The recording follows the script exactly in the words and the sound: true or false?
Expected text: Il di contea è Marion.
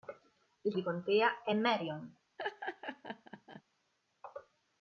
false